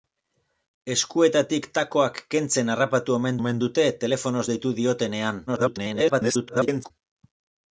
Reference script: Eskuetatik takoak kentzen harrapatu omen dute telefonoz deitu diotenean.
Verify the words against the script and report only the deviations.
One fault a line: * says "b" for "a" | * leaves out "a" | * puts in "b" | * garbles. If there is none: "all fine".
* puts in "omen"
* garbles